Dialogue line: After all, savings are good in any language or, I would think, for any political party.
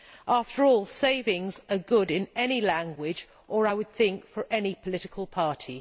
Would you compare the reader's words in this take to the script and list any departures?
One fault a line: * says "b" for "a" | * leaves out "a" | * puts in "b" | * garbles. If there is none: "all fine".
all fine